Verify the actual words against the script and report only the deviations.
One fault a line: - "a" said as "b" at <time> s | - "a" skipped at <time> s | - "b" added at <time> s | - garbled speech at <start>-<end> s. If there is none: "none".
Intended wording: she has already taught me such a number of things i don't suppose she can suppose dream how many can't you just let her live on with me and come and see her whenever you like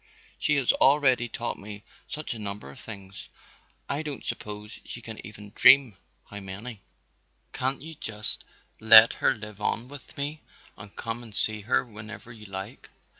- "suppose" said as "even" at 5.2 s